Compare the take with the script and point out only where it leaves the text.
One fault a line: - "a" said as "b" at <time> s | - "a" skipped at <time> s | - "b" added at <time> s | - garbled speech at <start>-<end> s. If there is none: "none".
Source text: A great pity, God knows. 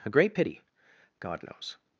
none